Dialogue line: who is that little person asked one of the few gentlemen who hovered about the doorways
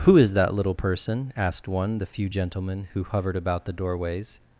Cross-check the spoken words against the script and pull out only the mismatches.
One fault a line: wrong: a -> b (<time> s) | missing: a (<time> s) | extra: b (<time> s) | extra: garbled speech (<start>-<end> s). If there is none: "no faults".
missing: of (2.0 s)